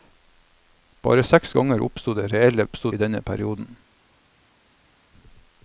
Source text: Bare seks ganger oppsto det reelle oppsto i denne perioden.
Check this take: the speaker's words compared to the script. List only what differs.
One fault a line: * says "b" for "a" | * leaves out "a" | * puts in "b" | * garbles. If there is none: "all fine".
all fine